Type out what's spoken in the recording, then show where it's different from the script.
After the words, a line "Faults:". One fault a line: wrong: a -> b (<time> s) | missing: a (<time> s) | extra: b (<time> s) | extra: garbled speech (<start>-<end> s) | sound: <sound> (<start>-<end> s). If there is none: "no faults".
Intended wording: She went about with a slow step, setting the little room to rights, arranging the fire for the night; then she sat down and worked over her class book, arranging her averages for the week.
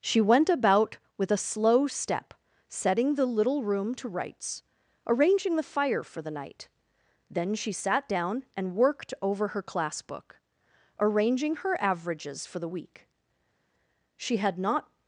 She went about with a slow step, setting the little room to rights, arranging the fire for the night; then she sat down and worked over her class book, arranging her averages for the week. She had not
Faults:
extra: She had not (14.2 s)